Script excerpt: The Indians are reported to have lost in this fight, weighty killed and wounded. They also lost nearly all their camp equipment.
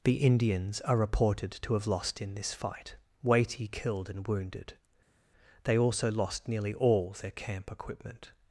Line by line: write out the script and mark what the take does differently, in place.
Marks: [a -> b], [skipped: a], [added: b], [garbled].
The Indians are reported to have lost in this fight, weighty killed and wounded. They also lost nearly all their camp equipment.